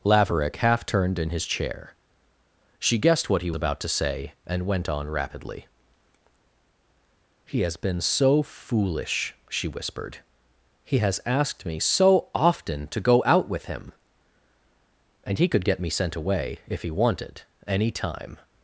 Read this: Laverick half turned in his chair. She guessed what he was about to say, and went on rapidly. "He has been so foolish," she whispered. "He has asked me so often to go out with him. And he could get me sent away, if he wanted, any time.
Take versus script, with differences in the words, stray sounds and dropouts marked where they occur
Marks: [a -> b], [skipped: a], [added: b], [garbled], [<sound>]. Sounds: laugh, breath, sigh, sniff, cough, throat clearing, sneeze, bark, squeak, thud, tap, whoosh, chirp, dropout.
Laverick half turned in his chair. She guessed what he [skipped: was] about to say, and went on rapidly. "He has been so foolish," she whispered. "He has asked me so often to go out with him. And he could get me sent away, if he wanted, any time.